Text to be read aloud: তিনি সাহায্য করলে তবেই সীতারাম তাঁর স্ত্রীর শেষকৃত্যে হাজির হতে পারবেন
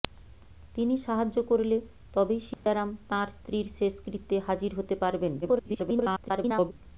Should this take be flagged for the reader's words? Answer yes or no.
yes